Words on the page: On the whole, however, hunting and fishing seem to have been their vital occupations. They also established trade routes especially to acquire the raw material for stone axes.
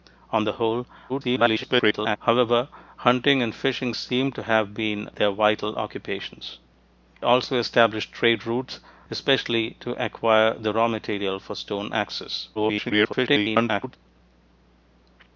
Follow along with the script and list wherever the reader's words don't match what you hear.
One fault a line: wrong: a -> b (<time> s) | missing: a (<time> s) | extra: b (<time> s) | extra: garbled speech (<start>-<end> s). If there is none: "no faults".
extra: garbled speech (1.1-2.2 s)
missing: They (6.6 s)
extra: garbled speech (12.5-14.0 s)